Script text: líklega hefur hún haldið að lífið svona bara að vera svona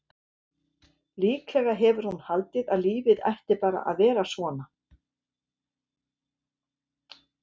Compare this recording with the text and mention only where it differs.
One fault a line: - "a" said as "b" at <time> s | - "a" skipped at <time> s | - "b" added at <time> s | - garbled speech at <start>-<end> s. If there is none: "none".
- "svona" said as "ætti" at 3.3 s